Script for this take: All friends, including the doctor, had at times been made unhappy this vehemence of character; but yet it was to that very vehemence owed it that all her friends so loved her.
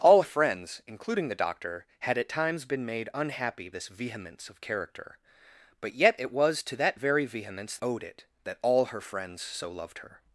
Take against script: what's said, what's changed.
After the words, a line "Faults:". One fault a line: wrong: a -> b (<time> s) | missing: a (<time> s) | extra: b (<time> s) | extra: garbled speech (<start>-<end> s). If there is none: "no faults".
All friends, including the doctor, had at times been made unhappy this vehemence of character; but yet it was to that very vehemence owed it that all her friends so loved her.
Faults:
no faults